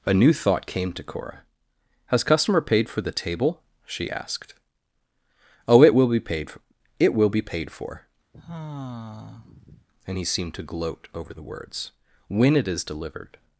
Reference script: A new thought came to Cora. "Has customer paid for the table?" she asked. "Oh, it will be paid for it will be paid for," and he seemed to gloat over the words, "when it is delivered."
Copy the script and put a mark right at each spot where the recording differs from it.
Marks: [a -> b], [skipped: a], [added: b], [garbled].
A new thought came to Cora. "Has customer paid for the table?" she asked. "Oh, it will be paid for it will be paid for," and he seemed to gloat over the words, "when it is delivered."